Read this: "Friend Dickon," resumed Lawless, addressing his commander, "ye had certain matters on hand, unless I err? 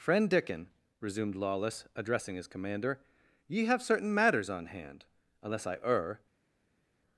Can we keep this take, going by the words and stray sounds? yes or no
no